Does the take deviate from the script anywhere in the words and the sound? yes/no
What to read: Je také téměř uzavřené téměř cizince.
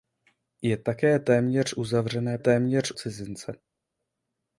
no